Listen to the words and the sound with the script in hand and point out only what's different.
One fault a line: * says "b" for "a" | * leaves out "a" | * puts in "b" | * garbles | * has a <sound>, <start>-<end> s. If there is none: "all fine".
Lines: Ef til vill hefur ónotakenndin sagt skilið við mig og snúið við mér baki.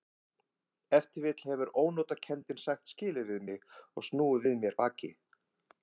all fine